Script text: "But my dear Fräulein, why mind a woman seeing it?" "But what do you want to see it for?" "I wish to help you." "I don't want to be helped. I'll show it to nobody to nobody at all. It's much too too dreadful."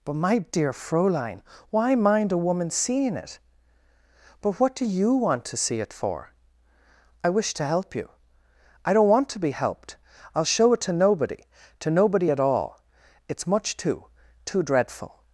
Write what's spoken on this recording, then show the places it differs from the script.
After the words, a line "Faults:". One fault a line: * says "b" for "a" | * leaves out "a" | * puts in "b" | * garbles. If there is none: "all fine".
"But my dear Fräulein, why mind a woman seeing it?" "But what do you want to see it for?" "I wish to help you." "I don't want to be helped. I'll show it to nobody to nobody at all. It's much too too dreadful."
Faults:
all fine